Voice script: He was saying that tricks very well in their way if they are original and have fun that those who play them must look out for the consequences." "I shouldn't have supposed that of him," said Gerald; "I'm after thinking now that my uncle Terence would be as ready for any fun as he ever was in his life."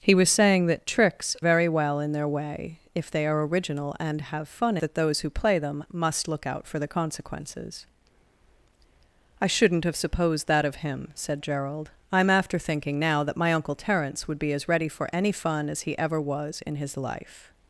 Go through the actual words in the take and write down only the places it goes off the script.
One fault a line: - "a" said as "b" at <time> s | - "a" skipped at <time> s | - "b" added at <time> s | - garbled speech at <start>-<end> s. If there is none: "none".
none